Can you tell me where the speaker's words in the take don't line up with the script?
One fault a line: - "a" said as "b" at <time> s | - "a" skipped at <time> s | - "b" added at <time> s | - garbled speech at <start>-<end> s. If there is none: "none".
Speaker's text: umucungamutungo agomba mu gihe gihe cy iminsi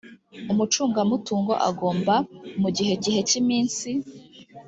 none